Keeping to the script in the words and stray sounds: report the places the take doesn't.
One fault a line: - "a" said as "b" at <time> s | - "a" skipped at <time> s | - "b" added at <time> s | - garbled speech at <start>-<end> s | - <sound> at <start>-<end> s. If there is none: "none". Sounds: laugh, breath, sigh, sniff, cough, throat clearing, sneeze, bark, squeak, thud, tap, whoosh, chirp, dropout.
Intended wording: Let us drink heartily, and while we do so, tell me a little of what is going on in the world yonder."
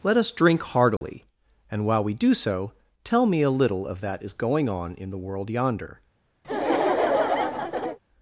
- dropout at 1.0-1.0 s
- "what" said as "that" at 4.0 s
- laugh at 6.4-8.0 s